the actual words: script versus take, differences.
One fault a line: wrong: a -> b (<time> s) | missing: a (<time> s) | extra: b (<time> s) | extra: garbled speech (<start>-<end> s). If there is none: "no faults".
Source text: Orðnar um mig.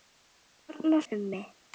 no faults